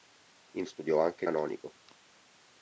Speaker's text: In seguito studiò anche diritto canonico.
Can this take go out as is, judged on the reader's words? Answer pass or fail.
fail